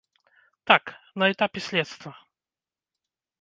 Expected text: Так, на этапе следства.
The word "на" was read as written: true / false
true